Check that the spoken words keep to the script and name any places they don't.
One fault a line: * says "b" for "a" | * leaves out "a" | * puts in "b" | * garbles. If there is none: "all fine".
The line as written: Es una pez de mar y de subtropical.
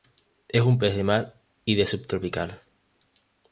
* says "un" for "una"